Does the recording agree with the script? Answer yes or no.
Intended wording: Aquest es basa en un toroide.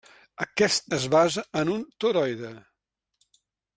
yes